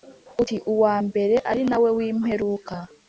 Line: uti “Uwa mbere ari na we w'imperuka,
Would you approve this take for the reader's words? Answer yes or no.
yes